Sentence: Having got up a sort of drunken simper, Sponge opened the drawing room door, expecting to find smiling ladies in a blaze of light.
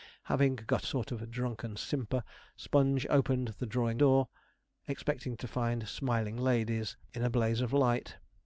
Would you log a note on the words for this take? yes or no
yes